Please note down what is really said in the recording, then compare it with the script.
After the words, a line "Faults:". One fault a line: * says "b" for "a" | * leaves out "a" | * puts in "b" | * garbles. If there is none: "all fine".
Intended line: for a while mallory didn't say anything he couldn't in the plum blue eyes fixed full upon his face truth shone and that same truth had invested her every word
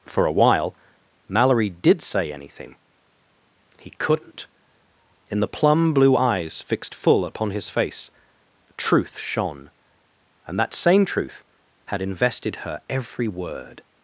for a while mallory did say anything he couldn't in the plum blue eyes fixed full upon his face truth shone and that same truth had invested her every word
Faults:
* says "did" for "didn't"